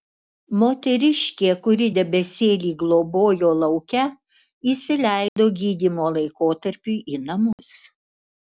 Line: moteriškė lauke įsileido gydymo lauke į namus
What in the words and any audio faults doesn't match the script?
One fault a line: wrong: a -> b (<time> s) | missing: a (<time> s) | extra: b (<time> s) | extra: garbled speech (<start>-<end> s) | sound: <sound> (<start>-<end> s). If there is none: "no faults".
extra: kuri debesėlį globojo (1.7 s)
sound: dropout (5.3-5.4 s)
wrong: lauke -> laikotarpiui (6.2 s)
sound: dropout (7.5-7.6 s)